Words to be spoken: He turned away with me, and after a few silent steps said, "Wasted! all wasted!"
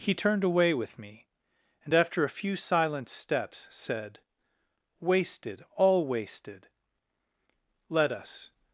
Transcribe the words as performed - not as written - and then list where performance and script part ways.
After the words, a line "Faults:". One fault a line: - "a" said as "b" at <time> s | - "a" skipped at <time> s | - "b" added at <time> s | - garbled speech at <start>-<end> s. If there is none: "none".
He turned away with me, and after a few silent steps said, "Wasted! all wasted!" "Let us
Faults:
- "Let us" added at 7.9 s